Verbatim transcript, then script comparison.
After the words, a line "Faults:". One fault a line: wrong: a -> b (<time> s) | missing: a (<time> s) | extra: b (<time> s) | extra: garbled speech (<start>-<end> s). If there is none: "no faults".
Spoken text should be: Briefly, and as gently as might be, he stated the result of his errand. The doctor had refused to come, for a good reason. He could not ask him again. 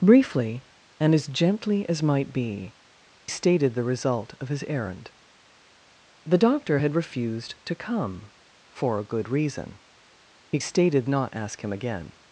Briefly, and as gently as might be, stated the result of his errand. The doctor had refused to come, for a good reason. He stated not ask him again.
Faults:
missing: he (2.7 s)
wrong: could -> stated (10.6 s)